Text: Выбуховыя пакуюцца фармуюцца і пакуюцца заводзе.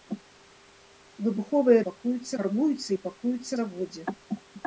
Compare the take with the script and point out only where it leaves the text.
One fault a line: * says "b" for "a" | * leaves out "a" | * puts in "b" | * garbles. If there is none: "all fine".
all fine